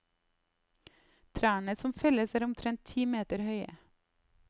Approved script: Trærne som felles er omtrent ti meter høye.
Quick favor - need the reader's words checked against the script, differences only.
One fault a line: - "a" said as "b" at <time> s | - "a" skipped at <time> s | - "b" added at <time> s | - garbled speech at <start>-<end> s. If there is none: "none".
none